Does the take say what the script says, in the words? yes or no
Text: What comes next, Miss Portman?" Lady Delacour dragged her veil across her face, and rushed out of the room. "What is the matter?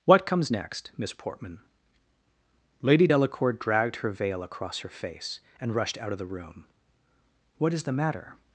yes